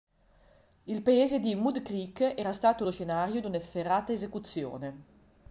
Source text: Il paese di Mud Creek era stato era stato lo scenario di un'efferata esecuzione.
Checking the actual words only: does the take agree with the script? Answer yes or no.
no